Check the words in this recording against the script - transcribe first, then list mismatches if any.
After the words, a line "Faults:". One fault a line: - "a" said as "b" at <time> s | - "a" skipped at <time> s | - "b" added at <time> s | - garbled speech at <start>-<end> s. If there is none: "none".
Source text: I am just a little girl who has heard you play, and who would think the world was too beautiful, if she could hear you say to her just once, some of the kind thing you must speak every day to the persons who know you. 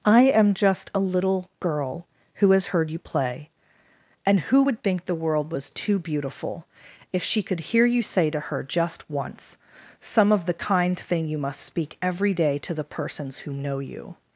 I am just a little girl who has heard you play, and who would think the world was too beautiful, if she could hear you say to her just once, some of the kind thing you must speak every day to the persons who know you.
Faults:
none